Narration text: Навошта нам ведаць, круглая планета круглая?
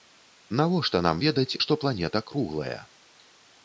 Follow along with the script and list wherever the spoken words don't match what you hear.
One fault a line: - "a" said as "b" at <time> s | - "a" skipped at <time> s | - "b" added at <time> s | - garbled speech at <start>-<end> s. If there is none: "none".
- "круглая" said as "што" at 1.7 s